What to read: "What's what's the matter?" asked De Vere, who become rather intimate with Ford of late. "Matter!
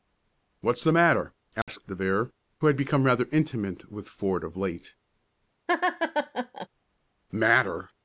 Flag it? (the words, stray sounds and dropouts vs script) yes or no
yes